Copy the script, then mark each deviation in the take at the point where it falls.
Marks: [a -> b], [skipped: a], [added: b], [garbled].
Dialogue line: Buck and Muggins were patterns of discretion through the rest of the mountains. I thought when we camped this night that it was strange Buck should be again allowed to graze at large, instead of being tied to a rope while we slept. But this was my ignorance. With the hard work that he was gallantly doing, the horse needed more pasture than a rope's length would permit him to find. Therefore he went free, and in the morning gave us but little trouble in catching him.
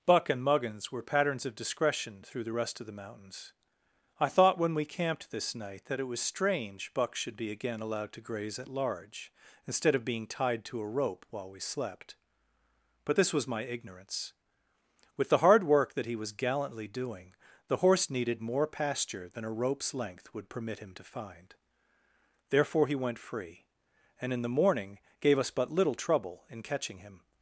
Buck and Muggins were patterns of discretion through the rest of the mountains. I thought when we camped this night that it was strange Buck should be again allowed to graze at large, instead of being tied to a rope while we slept. But this was my ignorance. With the hard work that he was gallantly doing, the horse needed more pasture than a rope's length would permit him to find. Therefore he went free, and in the morning gave us but little trouble in catching him.